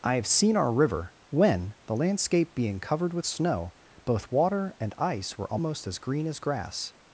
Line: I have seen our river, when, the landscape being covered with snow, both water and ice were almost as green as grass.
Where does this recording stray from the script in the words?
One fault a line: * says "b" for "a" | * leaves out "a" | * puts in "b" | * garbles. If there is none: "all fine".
all fine